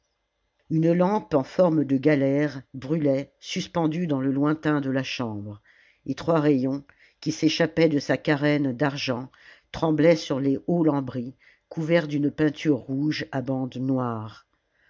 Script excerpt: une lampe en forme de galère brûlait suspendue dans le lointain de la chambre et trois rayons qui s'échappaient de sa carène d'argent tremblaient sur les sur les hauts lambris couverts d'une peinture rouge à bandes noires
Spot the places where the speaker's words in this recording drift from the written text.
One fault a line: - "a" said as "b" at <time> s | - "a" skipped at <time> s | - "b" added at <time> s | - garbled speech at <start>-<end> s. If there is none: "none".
- "sur les" skipped at 10.6 s